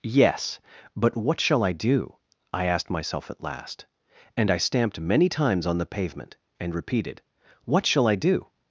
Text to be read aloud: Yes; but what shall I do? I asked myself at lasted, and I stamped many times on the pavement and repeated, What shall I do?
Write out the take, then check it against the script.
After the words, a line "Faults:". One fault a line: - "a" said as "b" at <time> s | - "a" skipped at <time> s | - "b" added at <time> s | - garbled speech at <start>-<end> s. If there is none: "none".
Yes; but what shall I do? I asked myself at last, and I stamped many times on the pavement and repeated, What shall I do?
Faults:
- "lasted" said as "last" at 3.4 s